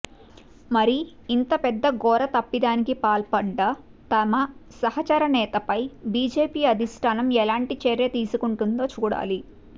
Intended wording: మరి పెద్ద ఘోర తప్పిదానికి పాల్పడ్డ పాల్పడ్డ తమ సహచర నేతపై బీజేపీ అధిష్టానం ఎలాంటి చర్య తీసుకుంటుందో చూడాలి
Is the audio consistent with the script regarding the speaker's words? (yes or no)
no